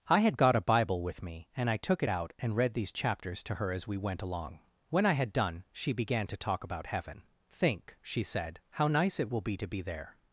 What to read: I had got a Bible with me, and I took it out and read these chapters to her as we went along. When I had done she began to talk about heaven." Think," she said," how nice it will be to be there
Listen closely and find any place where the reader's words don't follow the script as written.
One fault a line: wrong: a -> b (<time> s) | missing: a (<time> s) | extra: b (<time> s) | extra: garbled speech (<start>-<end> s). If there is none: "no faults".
no faults